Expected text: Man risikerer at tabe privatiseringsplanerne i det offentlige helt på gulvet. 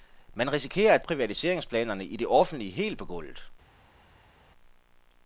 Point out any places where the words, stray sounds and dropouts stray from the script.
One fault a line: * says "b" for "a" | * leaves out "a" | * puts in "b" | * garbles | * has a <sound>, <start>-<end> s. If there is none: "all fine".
* leaves out "tabe"